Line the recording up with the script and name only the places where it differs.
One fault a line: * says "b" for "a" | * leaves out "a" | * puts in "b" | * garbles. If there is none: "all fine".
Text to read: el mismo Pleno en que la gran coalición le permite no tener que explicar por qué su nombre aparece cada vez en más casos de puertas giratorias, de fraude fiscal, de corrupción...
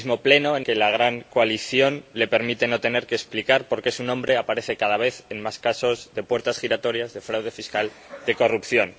all fine